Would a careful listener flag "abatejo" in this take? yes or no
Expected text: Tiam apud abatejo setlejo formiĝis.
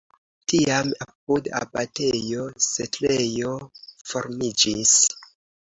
no